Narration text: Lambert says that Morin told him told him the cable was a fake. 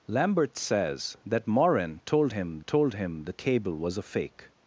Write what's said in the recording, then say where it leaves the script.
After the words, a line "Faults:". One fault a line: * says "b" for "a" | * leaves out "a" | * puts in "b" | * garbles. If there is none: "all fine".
Lambert says that Morin told him told him the cable was a fake.
Faults:
all fine